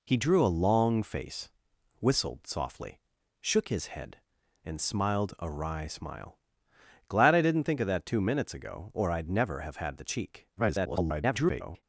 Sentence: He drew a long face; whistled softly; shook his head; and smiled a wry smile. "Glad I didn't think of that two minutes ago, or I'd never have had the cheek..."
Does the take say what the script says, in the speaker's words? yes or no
no